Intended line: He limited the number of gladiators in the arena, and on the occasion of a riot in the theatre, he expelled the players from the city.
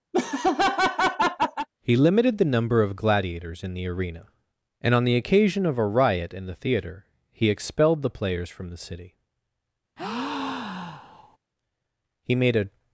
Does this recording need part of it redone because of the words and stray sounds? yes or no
yes